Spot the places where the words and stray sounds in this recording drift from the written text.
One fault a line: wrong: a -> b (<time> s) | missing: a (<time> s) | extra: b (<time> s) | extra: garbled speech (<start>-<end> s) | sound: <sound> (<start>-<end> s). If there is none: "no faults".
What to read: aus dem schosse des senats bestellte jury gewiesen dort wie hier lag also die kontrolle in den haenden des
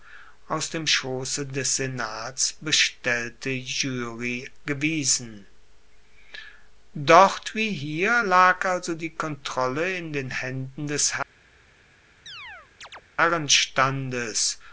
sound: chirp (12.3-13.0 s)